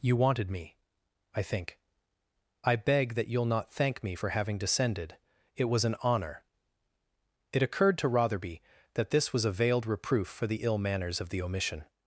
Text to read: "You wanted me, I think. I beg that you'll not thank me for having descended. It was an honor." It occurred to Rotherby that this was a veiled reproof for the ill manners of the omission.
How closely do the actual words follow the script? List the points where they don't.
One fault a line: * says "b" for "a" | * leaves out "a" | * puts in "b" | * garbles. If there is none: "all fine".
all fine